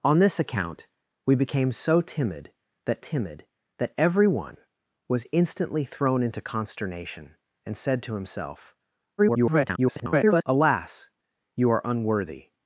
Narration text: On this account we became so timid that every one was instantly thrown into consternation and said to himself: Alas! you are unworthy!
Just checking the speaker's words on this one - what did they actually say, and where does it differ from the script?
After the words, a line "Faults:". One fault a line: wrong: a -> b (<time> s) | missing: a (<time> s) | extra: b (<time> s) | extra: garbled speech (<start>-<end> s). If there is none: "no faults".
On this account we became so timid that timid that every one was instantly thrown into consternation and said to himself: [garbled] Alas! you are unworthy!
Faults:
extra: timid that (3.0 s)
extra: garbled speech (9.2-10.4 s)